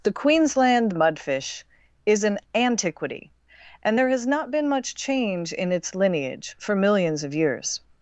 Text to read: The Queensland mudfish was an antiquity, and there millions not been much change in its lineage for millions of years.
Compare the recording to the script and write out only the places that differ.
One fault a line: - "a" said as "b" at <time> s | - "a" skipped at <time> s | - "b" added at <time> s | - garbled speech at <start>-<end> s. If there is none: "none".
- "was" said as "is" at 2.1 s
- "millions" said as "has" at 4.1 s